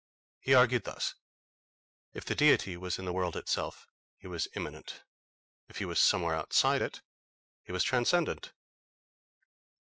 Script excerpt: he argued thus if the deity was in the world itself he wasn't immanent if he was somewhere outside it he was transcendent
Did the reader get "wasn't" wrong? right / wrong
wrong